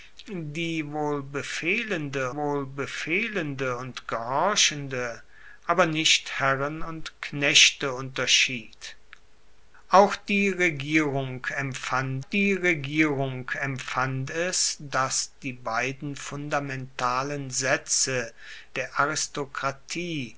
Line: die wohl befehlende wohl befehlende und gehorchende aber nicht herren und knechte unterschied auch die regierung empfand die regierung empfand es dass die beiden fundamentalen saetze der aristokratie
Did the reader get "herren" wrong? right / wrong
right